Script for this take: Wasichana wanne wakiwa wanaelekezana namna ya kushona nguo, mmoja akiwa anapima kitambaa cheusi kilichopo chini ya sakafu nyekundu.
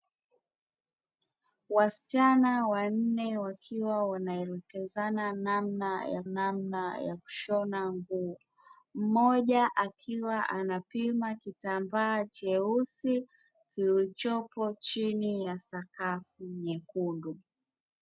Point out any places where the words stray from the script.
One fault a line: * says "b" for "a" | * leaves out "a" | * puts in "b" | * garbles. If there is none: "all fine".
* puts in "namna ya"